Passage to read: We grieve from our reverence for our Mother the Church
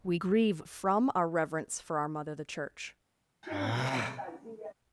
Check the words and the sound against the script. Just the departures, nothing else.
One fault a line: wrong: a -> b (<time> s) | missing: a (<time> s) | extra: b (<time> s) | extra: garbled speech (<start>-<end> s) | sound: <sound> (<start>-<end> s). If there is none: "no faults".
sound: sigh (3.4-4.7 s)